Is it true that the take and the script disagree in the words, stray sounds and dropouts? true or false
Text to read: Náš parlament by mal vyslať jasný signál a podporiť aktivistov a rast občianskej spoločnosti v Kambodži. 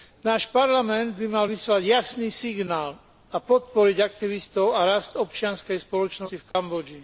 true